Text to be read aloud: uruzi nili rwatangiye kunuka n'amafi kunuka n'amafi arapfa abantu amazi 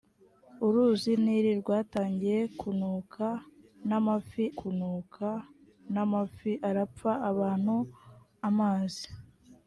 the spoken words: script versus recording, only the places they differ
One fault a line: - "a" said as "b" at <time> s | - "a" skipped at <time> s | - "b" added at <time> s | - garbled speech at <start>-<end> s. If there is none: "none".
none